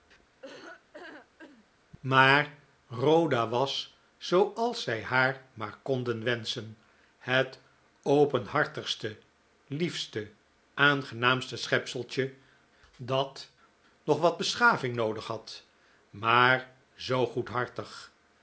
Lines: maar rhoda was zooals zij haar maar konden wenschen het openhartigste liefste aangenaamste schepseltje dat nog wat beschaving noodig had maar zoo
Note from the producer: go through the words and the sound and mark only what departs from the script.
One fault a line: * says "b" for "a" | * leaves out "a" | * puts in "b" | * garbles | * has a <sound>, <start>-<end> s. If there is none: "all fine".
* has a laugh, 0.4-1.7 s